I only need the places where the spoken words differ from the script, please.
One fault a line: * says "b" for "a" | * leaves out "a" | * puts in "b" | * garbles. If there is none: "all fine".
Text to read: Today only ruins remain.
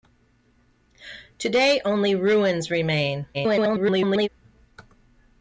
* garbles